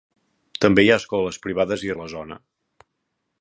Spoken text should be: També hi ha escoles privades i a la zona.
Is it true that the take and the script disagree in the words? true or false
false